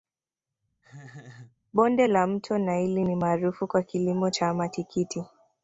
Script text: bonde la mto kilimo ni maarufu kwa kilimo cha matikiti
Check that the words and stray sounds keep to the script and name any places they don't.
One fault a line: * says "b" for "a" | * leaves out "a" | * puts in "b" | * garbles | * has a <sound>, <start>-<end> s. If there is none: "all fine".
* has a laugh, 0.8-1.6 s
* says "naili" for "kilimo"